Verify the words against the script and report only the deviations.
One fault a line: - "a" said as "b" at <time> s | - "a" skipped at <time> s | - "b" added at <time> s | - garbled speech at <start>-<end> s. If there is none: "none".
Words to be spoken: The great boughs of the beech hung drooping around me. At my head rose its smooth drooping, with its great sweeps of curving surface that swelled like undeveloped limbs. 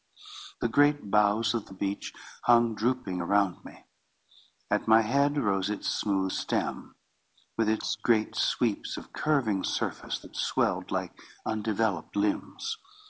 - "drooping" said as "stem" at 6.3 s